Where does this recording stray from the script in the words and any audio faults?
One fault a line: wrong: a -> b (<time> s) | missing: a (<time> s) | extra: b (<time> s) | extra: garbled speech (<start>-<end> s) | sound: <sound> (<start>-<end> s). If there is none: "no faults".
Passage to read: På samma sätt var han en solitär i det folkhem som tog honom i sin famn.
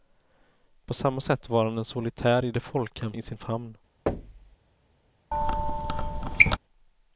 missing: som tog honom (3.1 s)
sound: thud (4.1-4.6 s)
sound: squeak (5.3-6.6 s)